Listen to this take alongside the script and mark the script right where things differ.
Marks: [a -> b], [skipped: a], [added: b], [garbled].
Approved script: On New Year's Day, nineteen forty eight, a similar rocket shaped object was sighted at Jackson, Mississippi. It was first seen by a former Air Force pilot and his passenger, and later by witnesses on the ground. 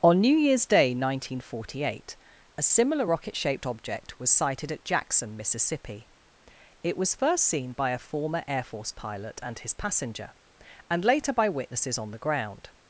On New Year's Day, nineteen forty eight, a similar rocket shaped object was sighted at Jackson, Mississippi. It was first seen by a former Air Force pilot and his passenger, and later by witnesses on the ground.